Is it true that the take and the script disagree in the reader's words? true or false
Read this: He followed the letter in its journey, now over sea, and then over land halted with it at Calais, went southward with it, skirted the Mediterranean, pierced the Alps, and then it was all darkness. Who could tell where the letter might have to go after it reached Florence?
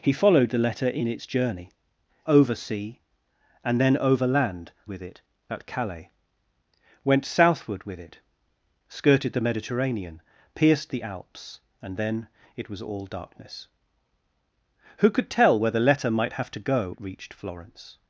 true